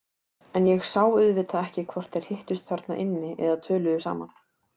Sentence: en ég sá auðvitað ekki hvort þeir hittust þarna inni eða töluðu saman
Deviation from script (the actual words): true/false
false